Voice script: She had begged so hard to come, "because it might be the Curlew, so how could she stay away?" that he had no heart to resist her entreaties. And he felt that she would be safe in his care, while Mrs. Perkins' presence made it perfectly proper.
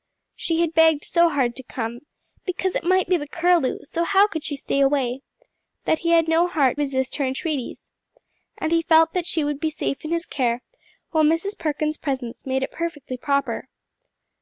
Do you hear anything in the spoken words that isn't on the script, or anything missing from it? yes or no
yes